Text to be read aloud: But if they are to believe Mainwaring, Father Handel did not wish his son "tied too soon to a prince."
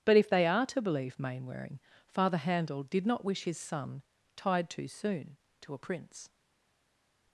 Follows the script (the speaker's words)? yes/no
yes